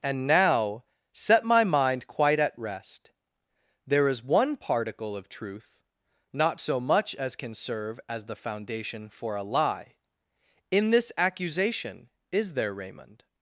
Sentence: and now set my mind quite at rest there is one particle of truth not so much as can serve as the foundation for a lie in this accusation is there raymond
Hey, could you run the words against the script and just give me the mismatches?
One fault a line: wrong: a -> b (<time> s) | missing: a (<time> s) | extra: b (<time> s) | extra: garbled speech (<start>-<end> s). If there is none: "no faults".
no faults